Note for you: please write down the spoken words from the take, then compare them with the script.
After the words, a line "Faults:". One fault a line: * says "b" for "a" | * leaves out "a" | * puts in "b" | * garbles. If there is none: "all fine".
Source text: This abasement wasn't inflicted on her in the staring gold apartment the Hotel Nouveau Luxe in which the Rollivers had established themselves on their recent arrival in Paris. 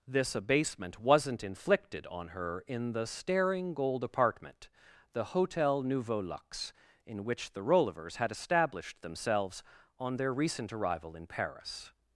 This abasement wasn't inflicted on her in the staring gold apartment the Hotel Nouveau Luxe in which the Rollivers had established themselves on their recent arrival in Paris.
Faults:
all fine